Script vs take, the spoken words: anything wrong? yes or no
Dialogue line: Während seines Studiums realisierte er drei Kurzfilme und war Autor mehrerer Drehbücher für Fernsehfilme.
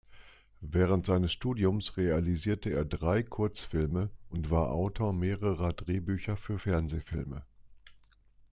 no